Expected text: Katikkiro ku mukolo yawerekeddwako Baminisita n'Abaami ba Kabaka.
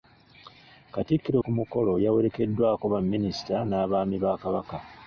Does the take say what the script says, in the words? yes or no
yes